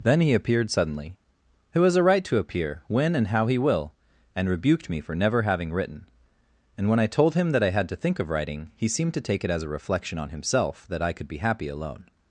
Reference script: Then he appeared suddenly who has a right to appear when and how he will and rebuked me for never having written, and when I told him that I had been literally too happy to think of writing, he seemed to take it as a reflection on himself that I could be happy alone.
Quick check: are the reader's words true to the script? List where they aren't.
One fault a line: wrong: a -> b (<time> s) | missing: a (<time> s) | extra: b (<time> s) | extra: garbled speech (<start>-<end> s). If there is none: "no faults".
missing: been literally too happy (7.9 s)